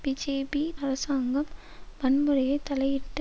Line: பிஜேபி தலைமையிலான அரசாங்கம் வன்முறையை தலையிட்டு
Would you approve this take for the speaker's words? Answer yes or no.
no